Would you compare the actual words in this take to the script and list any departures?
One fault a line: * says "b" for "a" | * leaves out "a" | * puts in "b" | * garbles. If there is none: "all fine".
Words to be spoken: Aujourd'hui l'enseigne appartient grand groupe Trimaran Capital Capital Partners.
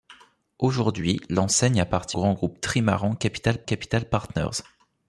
all fine